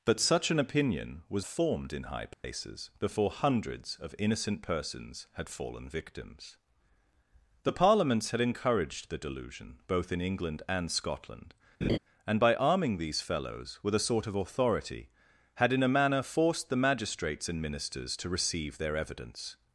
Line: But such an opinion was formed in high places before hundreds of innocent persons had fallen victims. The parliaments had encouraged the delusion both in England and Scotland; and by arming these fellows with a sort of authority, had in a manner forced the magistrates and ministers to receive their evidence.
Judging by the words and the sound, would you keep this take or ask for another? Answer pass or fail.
fail